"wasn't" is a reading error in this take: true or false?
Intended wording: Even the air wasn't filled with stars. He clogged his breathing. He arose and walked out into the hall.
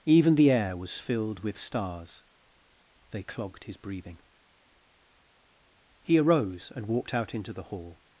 true